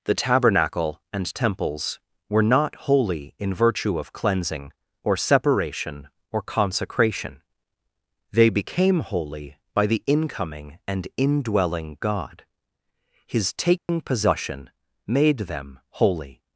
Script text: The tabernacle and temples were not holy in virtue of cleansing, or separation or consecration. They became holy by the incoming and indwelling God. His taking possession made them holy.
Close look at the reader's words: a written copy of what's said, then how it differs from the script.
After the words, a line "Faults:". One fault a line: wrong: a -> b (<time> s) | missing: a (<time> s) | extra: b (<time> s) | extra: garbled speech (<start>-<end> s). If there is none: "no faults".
The tabernacle and temples were not holy in virtue of cleansing, or separation or consecration. They became holy by the incoming and indwelling God. His taking possession made them holy.
Faults:
no faults